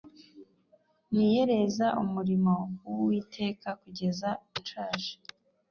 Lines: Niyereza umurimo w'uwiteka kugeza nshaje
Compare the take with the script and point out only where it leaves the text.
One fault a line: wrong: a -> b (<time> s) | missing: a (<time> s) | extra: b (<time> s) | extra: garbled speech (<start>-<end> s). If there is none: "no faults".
no faults